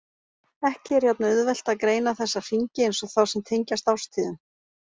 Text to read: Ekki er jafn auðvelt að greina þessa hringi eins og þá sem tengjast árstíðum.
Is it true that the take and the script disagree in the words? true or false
false